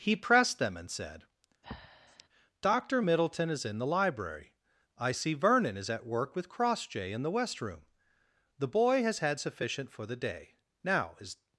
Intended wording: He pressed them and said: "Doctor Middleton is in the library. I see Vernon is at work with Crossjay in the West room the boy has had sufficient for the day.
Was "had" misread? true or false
false